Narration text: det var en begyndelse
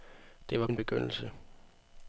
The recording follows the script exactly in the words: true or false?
true